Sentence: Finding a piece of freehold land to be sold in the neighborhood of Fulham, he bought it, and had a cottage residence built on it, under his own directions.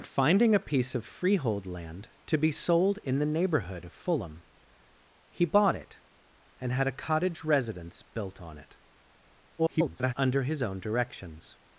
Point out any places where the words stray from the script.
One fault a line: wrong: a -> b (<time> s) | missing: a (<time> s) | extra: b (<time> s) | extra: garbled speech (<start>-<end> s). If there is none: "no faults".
extra: garbled speech (9.6-10.1 s)